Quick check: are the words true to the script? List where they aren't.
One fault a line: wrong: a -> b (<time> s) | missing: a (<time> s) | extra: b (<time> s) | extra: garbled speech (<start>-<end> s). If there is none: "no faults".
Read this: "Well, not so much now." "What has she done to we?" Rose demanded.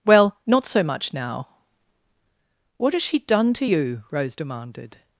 wrong: we -> you (3.6 s)